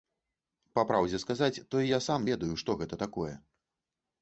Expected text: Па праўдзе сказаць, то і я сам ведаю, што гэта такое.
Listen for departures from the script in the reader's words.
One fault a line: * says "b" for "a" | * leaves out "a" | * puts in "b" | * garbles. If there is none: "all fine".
all fine